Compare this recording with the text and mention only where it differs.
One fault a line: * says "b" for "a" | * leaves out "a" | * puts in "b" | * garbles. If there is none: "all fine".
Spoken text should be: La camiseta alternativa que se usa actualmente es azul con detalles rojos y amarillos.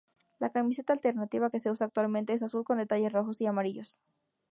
all fine